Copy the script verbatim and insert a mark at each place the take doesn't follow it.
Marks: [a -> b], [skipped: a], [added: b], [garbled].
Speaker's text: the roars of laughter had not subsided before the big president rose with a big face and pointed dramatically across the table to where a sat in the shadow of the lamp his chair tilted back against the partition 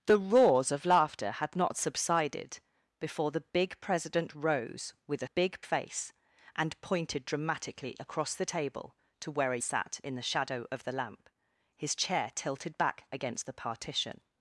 the roars of laughter had not subsided before the big president rose with a big face and pointed dramatically across the table to where a sat in the shadow of the lamp his chair tilted back against the partition